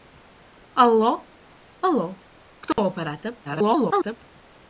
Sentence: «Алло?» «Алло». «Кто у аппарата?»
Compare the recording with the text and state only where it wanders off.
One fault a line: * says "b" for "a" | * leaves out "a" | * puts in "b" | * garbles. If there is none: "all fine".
* garbles